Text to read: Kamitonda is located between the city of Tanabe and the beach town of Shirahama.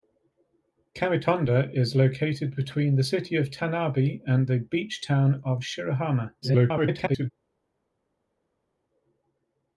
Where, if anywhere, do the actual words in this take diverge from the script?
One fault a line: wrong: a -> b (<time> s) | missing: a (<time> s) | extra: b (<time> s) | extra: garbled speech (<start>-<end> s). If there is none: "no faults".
extra: garbled speech (6.4-7.3 s)